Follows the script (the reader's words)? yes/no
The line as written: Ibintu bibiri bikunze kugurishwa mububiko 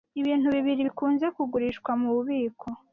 yes